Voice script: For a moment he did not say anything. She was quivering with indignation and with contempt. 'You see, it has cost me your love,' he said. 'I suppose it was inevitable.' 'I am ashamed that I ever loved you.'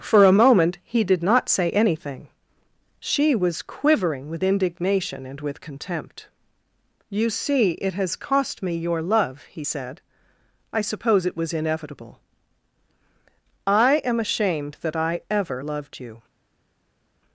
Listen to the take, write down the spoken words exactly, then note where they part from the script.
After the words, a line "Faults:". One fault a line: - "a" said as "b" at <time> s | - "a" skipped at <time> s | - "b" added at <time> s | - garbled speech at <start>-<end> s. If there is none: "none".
For a moment he did not say anything. She was quivering with indignation and with contempt. 'You see, it has cost me your love,' he said. 'I suppose it was inevitable.' 'I am ashamed that I ever loved you.'
Faults:
none